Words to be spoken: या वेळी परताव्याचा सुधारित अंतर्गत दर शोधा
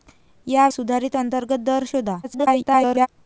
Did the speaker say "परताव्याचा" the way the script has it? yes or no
no